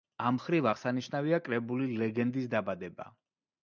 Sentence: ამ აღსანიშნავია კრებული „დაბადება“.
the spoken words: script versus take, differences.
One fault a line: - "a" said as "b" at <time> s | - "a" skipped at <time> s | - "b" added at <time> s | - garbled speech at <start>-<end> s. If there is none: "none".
- "მხრივ" added at 0.3 s
- "ლეგენდის" added at 2.0 s